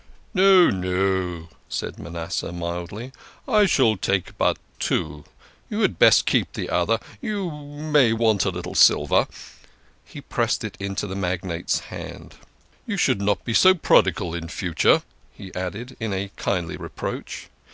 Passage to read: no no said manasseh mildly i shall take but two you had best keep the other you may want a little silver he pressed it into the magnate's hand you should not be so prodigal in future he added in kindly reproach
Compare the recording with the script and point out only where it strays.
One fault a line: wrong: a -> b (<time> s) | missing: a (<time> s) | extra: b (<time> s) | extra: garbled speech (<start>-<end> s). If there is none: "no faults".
no faults